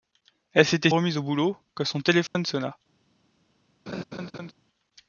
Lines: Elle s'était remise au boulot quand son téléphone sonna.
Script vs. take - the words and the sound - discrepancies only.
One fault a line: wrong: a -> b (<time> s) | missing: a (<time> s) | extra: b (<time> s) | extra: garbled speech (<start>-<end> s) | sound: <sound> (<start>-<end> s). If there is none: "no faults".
sound: dropout (2.3-2.4 s)
sound: laugh (3.9-4.5 s)